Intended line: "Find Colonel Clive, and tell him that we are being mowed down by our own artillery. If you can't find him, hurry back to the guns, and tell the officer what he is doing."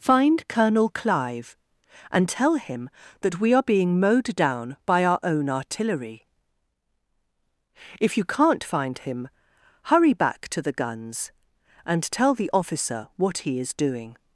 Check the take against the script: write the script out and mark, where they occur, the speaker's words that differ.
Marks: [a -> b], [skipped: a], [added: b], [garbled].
"Find Colonel Clive, and tell him that we are being mowed down by our own artillery. If you can't find him, hurry back to the guns, and tell the officer what he is doing."